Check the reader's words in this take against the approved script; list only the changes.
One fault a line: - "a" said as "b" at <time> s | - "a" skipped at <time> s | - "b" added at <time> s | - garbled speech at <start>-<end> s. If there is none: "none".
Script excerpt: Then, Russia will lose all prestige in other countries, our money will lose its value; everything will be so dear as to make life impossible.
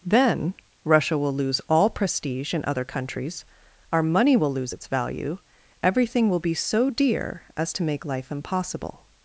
none